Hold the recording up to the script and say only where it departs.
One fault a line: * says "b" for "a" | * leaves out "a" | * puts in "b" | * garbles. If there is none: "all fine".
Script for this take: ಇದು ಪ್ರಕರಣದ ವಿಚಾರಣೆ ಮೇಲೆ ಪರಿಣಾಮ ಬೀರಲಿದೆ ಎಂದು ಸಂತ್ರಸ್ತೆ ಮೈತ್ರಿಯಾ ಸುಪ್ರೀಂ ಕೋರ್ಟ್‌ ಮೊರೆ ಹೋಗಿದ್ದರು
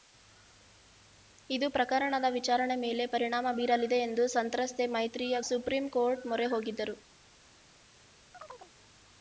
all fine